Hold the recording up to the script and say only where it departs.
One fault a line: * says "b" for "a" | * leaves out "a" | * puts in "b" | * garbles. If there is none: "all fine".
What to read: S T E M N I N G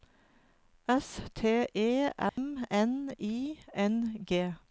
all fine